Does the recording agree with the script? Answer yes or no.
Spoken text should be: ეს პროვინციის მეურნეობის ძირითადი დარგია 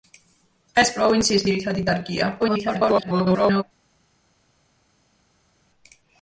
no